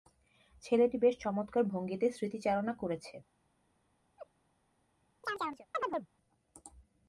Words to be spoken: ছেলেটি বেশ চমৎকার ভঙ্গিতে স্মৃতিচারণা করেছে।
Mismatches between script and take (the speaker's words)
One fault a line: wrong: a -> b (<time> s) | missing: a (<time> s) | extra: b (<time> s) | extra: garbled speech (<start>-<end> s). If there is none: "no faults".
no faults